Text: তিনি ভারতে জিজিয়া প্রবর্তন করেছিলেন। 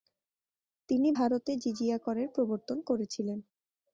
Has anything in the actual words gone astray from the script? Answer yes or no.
yes